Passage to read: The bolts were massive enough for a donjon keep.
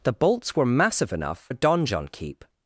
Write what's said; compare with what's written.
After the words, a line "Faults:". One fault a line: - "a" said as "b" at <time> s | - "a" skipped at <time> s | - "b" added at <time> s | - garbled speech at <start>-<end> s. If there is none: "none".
The bolts were massive enough a donjon keep.
Faults:
- "for" skipped at 1.5 s